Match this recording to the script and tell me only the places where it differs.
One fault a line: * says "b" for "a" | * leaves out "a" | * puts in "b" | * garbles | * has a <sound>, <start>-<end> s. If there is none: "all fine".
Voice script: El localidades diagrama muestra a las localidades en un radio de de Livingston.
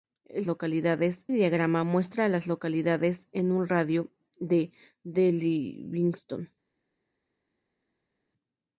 all fine